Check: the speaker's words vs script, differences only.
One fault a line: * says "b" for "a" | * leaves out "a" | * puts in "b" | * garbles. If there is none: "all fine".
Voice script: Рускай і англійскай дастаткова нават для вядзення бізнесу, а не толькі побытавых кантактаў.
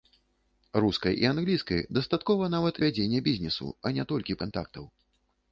* leaves out "для"
* leaves out "побытавых"